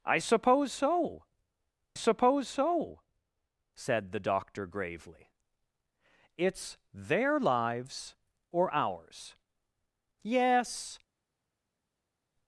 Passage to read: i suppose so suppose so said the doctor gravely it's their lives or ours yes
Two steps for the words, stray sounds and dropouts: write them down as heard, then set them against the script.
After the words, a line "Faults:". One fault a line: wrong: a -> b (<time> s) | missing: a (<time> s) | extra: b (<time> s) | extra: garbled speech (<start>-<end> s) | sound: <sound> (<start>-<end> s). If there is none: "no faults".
i suppose so suppose so said the doctor gravely it's their lives or ours yes
Faults:
no faults